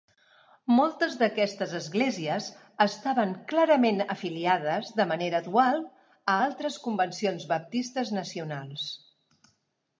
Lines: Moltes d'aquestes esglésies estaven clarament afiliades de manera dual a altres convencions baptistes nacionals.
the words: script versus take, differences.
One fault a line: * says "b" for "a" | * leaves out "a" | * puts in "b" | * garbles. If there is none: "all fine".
all fine